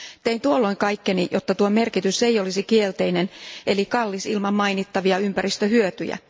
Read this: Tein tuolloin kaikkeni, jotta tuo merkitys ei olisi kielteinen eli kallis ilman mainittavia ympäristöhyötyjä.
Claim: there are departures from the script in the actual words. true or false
false